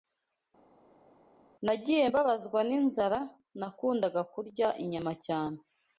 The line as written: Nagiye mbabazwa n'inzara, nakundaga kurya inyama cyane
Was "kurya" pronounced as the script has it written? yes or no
yes